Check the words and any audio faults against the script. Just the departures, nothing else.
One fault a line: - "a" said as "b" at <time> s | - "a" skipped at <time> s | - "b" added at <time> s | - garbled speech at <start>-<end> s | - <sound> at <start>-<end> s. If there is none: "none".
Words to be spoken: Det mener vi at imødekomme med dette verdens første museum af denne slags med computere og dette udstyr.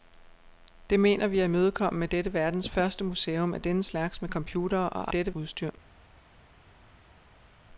none